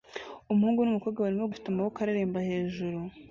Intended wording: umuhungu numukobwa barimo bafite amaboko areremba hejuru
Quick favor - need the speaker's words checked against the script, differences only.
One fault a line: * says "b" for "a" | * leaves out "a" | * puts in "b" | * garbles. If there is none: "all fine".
all fine